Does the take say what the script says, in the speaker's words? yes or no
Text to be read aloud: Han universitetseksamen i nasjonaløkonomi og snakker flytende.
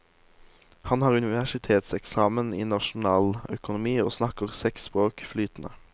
no